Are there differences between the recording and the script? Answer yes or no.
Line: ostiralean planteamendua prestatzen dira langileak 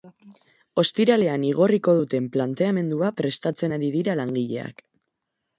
yes